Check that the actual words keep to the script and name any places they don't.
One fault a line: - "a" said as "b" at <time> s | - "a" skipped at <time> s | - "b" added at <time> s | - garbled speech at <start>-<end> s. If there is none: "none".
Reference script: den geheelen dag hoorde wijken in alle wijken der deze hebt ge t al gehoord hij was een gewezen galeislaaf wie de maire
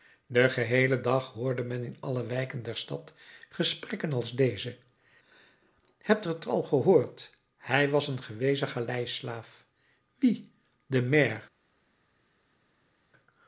- "wijken" said as "men" at 1.6 s
- "stad gesprekken als" added at 2.8 s